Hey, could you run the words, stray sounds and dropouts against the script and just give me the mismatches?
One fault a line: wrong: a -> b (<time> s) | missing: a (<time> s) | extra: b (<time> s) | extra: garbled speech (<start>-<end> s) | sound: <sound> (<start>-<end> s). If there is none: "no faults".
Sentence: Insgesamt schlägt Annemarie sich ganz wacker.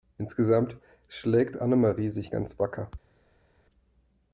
no faults